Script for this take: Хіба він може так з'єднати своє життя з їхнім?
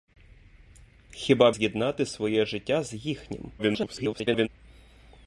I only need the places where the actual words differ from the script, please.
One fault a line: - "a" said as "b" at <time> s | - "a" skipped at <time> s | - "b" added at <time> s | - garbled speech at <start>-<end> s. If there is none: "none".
- "він може так" skipped at 1.5 s
- garbled speech at 3.6-4.5 s